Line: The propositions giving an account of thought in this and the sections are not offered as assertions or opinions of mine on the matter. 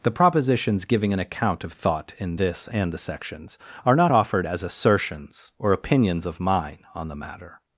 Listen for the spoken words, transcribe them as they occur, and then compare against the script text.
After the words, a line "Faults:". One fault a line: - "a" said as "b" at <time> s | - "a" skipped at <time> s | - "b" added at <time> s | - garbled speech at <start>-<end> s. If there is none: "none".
The propositions giving an account of thought in this and the sections are not offered as assertions or opinions of mine on the matter.
Faults:
none